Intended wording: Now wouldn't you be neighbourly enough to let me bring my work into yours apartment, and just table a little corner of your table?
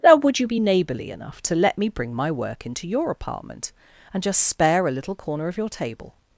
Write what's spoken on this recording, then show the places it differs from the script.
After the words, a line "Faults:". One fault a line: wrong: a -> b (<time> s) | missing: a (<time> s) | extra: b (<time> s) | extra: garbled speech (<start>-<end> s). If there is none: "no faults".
Now would you be neighbourly enough to let me bring my work into your apartment, and just spare a little corner of your table?
Faults:
wrong: wouldn't -> would (0.1 s)
wrong: yours -> your (2.9 s)
wrong: table -> spare (4.5 s)